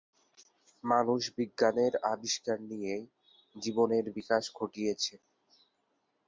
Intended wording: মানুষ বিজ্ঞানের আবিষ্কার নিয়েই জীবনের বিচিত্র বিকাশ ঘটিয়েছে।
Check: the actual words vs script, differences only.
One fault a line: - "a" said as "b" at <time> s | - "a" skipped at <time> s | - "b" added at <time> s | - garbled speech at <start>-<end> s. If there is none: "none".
- "বিচিত্র" skipped at 4.0 s